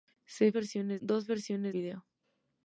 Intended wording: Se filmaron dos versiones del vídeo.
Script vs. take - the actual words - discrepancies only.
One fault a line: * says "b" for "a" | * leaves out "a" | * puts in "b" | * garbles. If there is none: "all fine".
* says "versiones" for "filmaron"
* leaves out "del"